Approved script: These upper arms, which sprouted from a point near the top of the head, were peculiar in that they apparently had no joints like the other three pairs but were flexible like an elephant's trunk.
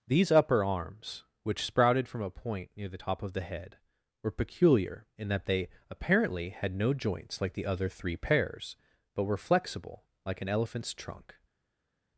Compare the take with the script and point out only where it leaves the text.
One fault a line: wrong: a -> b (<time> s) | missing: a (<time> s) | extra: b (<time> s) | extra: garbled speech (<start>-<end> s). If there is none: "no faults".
no faults